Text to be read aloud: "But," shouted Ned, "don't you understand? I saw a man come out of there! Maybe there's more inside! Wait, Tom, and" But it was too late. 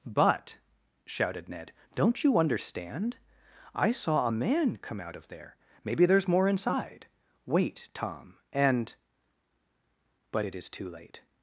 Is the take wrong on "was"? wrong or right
wrong